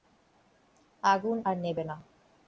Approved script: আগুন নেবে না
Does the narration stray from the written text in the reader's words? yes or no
yes